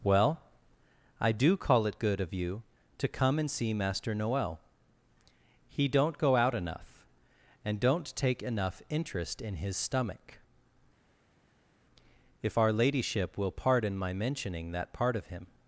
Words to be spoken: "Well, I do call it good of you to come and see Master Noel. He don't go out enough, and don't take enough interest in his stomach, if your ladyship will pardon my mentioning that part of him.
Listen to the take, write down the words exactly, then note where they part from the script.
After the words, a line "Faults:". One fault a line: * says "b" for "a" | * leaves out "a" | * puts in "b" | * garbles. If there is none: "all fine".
"Well, I do call it good of you to come and see Master Noel. He don't go out enough, and don't take enough interest in his stomach, if our ladyship will pardon my mentioning that part of him.
Faults:
* says "our" for "your"